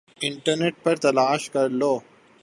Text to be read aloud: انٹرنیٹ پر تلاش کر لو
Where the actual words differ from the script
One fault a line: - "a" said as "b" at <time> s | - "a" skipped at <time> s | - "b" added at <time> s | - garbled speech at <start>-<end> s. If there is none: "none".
none